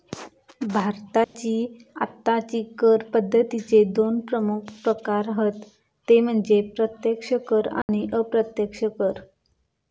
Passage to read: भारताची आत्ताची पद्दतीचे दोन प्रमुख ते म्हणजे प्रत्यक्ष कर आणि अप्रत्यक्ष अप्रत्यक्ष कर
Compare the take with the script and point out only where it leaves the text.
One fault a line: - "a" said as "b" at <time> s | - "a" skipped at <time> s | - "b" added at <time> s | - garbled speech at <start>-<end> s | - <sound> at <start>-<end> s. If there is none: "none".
- dropout at 1.2-1.4 s
- "कर" added at 2.8 s
- "प्रकार हत" added at 4.8 s
- dropout at 7.8-7.9 s
- "अप्रत्यक्ष" skipped at 8.8 s